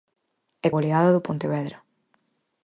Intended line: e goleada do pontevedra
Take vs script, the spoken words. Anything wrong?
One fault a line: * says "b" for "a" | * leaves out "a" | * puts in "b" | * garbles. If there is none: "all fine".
all fine